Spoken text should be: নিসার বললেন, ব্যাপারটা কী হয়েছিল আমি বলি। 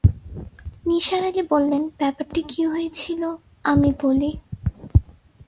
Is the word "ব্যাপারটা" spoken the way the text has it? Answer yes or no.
yes